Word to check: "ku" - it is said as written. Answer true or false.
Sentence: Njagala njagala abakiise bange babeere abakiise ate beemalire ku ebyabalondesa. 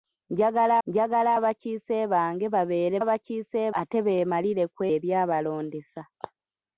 true